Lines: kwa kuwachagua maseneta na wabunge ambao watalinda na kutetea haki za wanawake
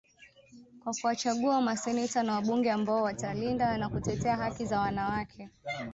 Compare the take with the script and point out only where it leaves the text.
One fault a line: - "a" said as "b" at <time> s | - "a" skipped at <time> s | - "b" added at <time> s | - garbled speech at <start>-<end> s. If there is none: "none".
none